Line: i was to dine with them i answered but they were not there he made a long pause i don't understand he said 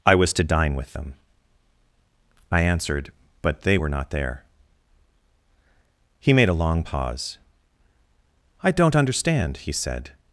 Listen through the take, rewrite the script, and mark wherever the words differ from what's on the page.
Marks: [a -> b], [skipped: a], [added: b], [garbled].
i was to dine with them i answered but they were not there he made a long pause i don't understand he said